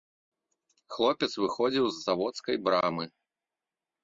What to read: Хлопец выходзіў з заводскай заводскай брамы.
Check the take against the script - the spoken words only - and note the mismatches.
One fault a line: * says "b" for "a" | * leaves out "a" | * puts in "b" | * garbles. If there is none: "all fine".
* leaves out "заводскай"